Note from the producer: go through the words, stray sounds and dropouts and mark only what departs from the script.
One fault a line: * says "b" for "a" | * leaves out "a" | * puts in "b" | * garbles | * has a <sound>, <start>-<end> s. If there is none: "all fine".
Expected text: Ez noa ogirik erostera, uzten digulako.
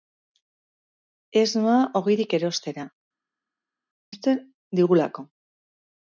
all fine